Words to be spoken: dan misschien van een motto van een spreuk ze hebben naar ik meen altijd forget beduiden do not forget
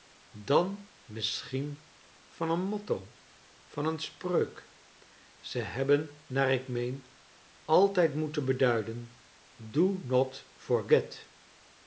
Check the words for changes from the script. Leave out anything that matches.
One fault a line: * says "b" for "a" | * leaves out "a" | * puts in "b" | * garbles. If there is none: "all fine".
* says "moeten" for "forget"